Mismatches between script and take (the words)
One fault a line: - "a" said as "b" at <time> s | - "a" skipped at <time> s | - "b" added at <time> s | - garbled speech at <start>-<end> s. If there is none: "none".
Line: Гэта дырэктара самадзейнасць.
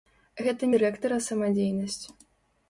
none